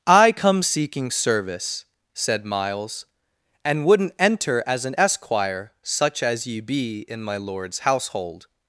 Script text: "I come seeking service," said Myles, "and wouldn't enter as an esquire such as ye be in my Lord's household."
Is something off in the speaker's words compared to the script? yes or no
no